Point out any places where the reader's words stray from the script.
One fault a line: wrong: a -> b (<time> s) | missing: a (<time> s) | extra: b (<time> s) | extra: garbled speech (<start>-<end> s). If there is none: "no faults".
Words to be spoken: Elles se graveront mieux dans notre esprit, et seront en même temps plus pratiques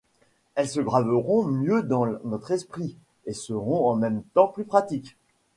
no faults